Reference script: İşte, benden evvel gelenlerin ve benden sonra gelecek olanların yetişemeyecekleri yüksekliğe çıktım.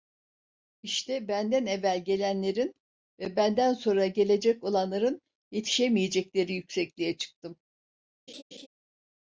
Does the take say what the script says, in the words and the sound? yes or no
no